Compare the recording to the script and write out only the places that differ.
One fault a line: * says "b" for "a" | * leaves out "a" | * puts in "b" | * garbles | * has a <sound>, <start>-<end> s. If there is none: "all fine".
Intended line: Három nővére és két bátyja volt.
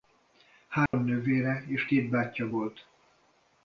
* has a dropout, 0.9-0.9 s